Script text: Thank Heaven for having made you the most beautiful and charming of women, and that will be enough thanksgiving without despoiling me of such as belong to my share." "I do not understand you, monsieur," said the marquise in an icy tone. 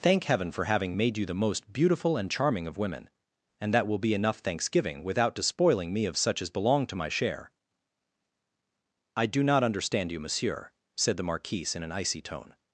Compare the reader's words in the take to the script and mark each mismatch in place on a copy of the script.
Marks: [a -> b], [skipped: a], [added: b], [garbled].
Thank Heaven for having made you the most beautiful and charming of women, and that will be enough thanksgiving without despoiling me of such as belong to my share." "I do not understand you, monsieur," said the marquise in an icy tone.